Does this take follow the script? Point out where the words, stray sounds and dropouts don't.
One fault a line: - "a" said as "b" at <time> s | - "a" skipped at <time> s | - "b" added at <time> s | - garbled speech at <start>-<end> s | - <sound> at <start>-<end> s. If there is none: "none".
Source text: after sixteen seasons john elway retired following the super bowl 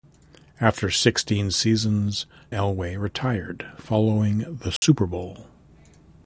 - "john" skipped at 2.3 s
- dropout at 4.8-4.8 s